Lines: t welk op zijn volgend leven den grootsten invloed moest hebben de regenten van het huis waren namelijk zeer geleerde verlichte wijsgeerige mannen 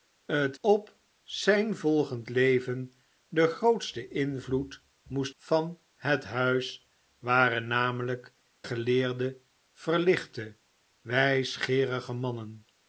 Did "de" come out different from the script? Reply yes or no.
yes